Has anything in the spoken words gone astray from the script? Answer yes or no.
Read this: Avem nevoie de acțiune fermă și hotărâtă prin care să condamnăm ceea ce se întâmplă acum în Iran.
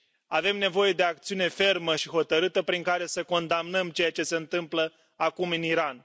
no